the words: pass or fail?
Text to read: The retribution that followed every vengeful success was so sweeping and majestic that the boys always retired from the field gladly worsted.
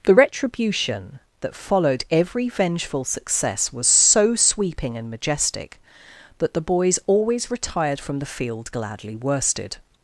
pass